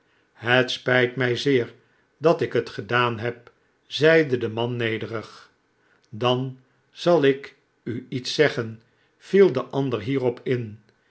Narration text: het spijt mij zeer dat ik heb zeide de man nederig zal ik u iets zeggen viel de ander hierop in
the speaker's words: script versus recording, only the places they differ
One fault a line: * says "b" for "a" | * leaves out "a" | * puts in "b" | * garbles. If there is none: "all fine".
* puts in "het gedaan"
* puts in "dan"